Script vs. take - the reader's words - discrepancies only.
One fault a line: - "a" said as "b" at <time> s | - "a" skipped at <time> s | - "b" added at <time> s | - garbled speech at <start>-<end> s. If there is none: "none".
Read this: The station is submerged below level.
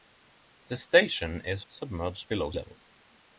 none